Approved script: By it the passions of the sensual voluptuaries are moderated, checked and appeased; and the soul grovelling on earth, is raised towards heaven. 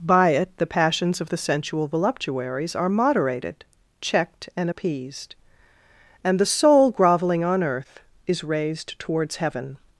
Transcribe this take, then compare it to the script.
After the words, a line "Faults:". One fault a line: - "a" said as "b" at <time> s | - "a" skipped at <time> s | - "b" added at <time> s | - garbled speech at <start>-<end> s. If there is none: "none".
By it the passions of the sensual voluptuaries are moderated, checked and appeased; and the soul grovelling on earth, is raised towards heaven.
Faults:
none